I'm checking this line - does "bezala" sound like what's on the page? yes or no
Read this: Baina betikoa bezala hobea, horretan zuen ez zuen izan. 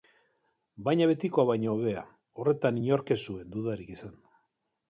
no